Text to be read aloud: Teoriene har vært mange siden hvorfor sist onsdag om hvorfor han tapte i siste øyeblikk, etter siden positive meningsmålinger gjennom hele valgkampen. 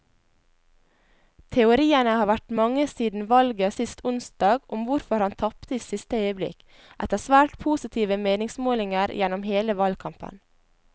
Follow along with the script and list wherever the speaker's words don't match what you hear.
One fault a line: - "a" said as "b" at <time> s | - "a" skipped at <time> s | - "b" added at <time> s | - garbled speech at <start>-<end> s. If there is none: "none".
- "hvorfor" said as "valget" at 3.3 s
- "siden" said as "svært" at 7.2 s